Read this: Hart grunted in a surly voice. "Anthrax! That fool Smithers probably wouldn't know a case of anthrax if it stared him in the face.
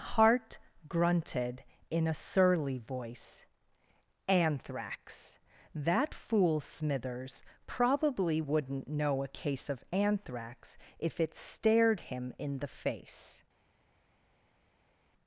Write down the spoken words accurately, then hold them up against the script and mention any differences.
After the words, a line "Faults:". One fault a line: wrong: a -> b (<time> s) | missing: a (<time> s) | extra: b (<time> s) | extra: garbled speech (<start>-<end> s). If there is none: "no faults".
Hart grunted in a surly voice. "Anthrax! That fool Smithers probably wouldn't know a case of anthrax if it stared him in the face.
Faults:
no faults